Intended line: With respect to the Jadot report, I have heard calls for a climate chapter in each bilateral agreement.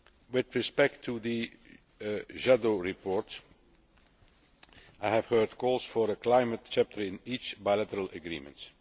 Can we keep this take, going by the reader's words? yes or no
yes